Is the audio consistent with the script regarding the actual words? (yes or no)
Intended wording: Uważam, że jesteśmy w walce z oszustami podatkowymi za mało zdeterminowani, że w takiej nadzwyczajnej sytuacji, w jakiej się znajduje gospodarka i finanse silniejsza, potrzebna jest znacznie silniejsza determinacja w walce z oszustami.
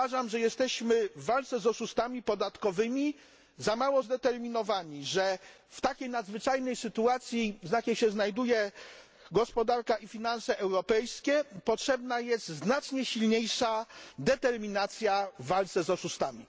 no